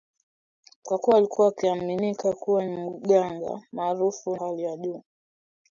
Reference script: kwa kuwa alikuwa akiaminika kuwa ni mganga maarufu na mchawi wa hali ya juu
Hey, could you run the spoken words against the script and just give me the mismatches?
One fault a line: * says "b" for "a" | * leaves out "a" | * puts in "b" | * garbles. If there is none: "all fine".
* leaves out "ni"
* leaves out "na mchawi wa"